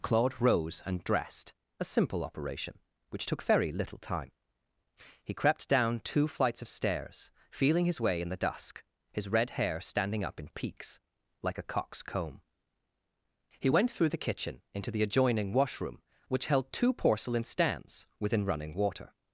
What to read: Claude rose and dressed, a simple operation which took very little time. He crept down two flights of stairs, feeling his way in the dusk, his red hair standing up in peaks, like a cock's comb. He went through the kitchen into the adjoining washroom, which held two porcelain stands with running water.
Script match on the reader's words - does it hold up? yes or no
no